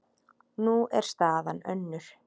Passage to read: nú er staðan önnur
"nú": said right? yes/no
yes